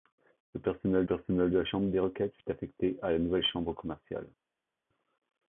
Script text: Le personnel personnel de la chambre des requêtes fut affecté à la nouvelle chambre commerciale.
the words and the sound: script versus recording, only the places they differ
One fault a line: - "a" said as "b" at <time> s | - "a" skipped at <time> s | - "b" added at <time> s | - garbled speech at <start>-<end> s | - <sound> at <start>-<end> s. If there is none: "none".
none